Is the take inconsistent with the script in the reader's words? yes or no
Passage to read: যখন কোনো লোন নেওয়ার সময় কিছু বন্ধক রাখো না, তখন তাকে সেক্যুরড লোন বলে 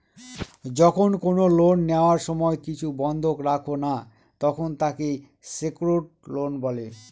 no